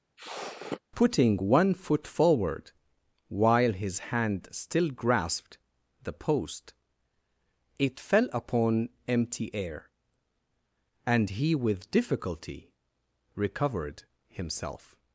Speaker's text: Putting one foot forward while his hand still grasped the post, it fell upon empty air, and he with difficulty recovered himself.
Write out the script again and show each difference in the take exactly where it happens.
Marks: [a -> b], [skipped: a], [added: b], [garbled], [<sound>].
[sniff] Putting one foot forward while his hand still grasped the post, it fell upon empty air, and he with difficulty recovered himself.